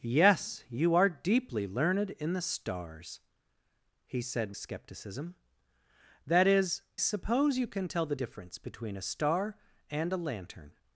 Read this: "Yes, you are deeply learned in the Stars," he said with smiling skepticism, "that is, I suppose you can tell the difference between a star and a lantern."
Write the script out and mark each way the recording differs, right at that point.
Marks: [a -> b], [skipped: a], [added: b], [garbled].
"Yes, you are deeply learned in the Stars," he said [skipped: with smiling] skepticism, "that is, [skipped: I] suppose you can tell the difference between a star and a lantern."